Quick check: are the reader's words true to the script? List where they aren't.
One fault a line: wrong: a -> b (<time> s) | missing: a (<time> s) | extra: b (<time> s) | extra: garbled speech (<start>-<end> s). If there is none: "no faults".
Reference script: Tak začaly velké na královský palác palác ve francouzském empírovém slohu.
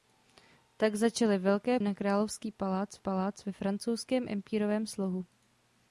no faults